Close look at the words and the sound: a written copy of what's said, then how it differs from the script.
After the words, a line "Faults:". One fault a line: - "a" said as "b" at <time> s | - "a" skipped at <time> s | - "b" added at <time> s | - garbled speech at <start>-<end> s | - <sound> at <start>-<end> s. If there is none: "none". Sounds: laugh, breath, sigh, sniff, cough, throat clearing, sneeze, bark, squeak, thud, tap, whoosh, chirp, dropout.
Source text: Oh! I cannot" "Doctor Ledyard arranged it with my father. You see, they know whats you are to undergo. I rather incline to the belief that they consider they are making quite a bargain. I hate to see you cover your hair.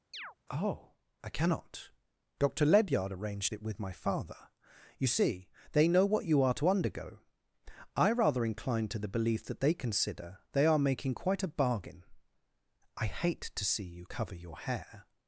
Oh! I cannot" "Doctor Ledyard arranged it with my father. You see, they know what you are to undergo. I rather incline to the belief that they consider they are making quite a bargain. I hate to see you cover your hair.
Faults:
- chirp at 0.1-0.3 s
- "whats" said as "what" at 6.1 s